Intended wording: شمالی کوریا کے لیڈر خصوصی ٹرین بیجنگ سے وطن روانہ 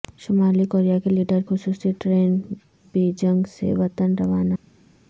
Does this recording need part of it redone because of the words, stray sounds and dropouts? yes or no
no